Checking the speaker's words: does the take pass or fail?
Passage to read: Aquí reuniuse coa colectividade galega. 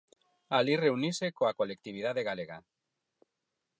fail